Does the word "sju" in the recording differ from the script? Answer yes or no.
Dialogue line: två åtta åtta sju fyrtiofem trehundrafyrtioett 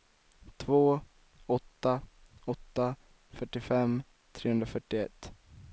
yes